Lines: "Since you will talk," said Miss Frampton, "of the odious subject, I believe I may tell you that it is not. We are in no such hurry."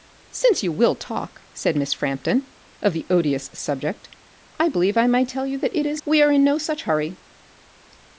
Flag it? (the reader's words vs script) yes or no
yes